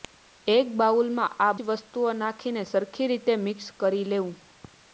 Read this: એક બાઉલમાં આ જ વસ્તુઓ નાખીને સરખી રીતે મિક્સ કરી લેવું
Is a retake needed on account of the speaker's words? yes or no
no